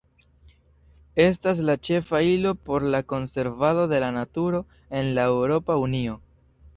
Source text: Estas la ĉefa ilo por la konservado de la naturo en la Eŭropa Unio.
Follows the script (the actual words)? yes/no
yes